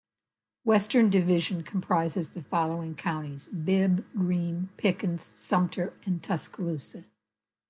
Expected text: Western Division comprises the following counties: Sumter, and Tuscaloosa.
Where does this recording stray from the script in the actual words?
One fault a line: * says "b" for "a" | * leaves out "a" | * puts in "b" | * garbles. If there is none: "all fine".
* puts in "Bibb Greene Pickens"